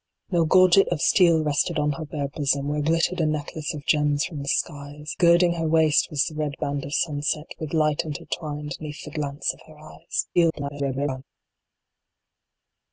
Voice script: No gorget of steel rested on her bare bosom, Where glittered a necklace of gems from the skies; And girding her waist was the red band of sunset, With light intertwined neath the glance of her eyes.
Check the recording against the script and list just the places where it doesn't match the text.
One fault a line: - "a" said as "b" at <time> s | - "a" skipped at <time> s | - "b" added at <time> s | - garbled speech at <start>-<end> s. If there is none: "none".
- "And" skipped at 5.2 s
- garbled speech at 10.4-11.2 s